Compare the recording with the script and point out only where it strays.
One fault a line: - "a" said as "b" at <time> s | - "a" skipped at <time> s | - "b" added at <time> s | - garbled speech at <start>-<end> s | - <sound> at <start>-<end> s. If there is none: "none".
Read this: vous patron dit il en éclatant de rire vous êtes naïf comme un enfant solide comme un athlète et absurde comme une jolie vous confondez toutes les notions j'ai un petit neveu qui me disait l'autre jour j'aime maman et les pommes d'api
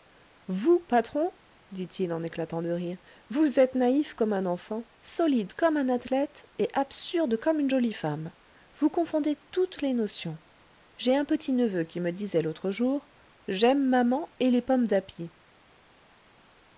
- "femme" added at 7.9 s